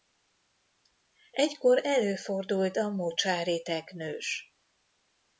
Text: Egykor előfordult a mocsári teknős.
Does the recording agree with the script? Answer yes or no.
yes